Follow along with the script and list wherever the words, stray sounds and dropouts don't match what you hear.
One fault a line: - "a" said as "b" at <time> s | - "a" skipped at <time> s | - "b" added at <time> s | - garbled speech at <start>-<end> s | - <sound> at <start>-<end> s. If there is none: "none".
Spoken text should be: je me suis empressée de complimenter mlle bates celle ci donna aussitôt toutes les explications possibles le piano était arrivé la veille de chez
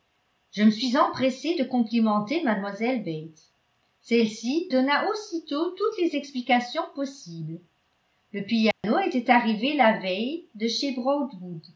- dropout at 8.7-8.8 s